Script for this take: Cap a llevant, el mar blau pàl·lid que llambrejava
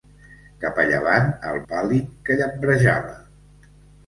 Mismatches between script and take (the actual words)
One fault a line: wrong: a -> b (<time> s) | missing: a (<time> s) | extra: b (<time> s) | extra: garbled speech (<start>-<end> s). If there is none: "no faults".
missing: mar blau (1.6 s)